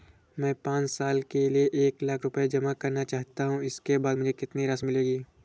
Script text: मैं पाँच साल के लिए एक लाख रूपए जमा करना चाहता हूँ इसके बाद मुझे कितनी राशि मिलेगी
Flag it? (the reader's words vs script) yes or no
no